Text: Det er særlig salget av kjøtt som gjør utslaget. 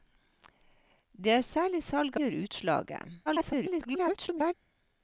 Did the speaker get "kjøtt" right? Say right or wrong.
wrong